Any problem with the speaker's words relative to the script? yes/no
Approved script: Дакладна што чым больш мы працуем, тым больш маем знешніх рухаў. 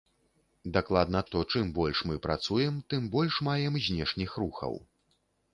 no